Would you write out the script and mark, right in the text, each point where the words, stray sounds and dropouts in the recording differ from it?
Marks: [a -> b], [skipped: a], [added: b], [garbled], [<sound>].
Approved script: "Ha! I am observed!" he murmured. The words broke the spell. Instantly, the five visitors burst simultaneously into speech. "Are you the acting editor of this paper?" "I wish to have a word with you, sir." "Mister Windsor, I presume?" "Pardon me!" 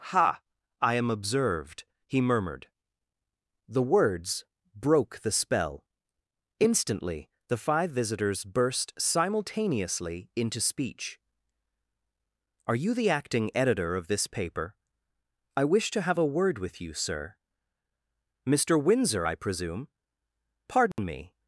"Ha! I am observed!" he murmured. The words broke the spell. Instantly, the five visitors burst simultaneously into speech. "Are you the acting editor of this paper?" "I wish to have a word with you, sir." "Mister Windsor, I presume?" "Pardon [dropout] me!"